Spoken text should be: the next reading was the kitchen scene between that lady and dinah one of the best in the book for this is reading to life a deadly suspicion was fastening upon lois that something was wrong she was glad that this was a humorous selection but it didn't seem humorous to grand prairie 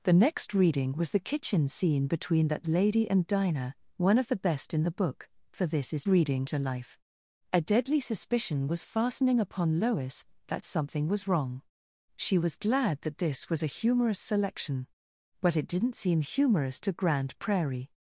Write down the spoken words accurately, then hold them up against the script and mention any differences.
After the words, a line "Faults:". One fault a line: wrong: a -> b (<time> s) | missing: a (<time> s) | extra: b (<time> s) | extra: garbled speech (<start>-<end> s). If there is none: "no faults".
the next reading was the kitchen scene between that lady and dinah one of the best in the book for this is reading to life a deadly suspicion was fastening upon lois that something was wrong she was glad that this was a humorous selection but it didn't seem humorous to grand prairie
Faults:
no faults